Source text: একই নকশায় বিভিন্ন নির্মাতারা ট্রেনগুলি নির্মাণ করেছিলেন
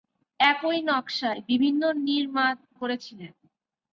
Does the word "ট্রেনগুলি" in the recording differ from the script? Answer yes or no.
yes